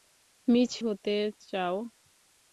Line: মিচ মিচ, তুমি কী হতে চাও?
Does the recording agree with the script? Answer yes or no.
no